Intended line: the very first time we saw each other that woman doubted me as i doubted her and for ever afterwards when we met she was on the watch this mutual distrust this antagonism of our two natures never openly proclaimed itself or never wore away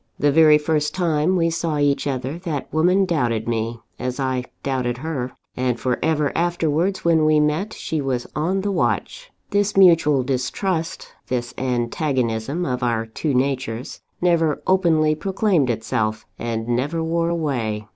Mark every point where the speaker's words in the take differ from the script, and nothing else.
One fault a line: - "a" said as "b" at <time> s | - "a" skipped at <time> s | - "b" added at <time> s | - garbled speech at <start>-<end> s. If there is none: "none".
- "or" said as "and" at 16.4 s